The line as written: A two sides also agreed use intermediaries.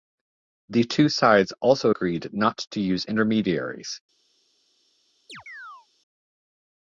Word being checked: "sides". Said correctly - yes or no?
yes